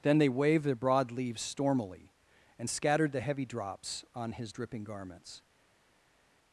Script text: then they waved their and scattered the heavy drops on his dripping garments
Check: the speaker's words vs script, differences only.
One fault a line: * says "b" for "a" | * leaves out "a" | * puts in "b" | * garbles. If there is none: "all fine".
* puts in "broad leaves stormily"